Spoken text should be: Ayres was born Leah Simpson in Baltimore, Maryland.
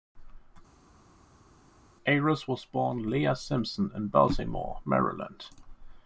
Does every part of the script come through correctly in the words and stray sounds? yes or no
yes